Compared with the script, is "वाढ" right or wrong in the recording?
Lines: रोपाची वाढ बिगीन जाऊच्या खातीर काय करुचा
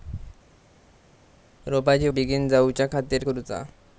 wrong